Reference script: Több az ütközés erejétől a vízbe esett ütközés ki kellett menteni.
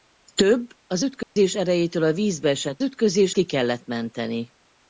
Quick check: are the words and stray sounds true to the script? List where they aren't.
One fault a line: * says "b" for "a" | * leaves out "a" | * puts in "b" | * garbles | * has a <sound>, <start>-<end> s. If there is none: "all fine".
* has a dropout, 1.2-1.4 s